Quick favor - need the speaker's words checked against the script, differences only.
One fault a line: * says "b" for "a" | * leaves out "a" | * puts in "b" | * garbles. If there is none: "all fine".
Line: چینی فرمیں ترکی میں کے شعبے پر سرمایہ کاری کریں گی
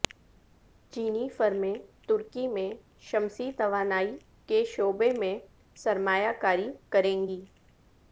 * puts in "شمسی توانائی"
* says "میں" for "پر"